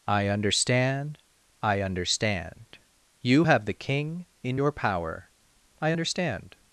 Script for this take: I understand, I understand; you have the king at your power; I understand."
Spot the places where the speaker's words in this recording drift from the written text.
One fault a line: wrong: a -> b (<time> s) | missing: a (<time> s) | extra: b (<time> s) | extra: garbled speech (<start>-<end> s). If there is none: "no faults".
wrong: at -> in (4.4 s)